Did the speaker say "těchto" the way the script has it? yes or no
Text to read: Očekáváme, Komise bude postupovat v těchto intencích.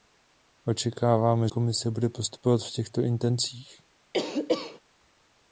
yes